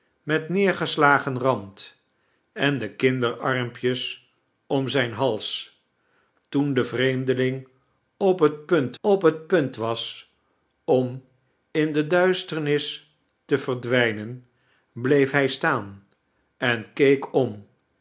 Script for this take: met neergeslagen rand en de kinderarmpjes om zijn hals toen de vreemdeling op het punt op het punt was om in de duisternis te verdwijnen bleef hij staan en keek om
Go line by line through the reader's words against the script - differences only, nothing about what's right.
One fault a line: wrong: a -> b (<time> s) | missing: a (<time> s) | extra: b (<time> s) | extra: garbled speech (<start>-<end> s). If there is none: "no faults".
no faults